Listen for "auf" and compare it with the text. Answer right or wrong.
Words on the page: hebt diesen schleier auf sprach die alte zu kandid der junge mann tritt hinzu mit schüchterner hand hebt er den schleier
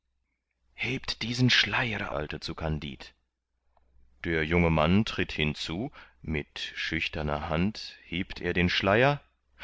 wrong